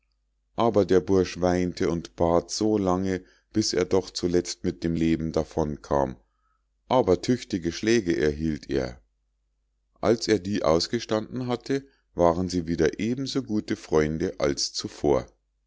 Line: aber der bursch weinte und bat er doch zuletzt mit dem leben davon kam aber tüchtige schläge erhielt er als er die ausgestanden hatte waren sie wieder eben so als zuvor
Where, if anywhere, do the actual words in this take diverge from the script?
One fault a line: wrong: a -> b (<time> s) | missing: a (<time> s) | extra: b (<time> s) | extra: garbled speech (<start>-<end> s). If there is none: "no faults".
extra: so lange bis (2.5 s)
extra: gute freunde (13.4 s)